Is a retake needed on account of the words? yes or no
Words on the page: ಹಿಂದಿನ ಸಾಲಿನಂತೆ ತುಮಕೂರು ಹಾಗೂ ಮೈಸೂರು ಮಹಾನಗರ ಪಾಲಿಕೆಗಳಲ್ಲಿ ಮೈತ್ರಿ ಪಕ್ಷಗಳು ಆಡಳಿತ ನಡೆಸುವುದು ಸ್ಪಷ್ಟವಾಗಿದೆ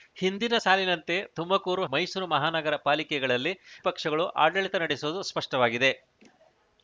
yes